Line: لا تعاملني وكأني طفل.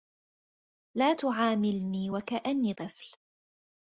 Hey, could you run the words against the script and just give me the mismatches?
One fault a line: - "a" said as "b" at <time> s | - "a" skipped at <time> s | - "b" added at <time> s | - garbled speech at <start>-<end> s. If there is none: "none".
none